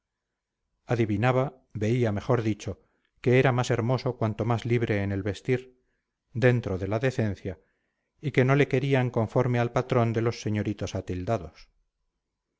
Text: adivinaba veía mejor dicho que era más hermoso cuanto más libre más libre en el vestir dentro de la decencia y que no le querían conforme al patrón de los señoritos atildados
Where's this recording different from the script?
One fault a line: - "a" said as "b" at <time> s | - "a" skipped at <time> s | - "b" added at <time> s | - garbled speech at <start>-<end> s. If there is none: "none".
- "más libre" skipped at 5.0 s